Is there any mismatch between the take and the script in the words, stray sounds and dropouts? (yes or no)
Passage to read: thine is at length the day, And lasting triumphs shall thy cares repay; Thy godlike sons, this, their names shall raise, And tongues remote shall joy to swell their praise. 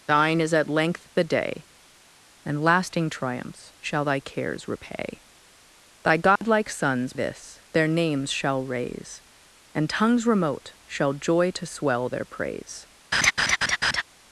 yes